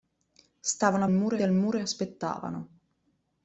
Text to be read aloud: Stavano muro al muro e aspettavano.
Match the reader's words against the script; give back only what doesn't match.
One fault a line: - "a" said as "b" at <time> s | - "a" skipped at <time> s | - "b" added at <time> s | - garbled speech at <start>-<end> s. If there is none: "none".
none